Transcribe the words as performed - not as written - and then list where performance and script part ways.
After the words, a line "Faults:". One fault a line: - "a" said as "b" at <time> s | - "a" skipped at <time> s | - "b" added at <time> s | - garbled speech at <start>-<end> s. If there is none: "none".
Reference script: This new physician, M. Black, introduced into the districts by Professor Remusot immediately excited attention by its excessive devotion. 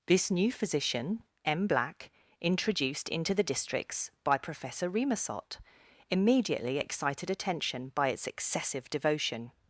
This new physician, M. Black, introduced into the districts by Professor Remusot immediately excited attention by its excessive devotion.
Faults:
none